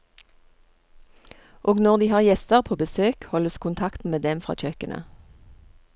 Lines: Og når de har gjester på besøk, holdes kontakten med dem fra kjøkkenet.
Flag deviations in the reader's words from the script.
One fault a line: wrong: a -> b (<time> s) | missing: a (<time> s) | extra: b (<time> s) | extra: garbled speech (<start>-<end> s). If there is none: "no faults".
no faults